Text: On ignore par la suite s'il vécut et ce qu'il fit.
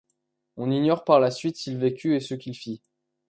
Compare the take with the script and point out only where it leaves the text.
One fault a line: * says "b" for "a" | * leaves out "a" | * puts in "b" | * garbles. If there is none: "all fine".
all fine